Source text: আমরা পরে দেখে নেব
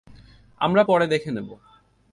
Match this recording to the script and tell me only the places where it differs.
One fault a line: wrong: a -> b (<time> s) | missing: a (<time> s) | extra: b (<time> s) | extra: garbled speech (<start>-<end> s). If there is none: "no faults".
no faults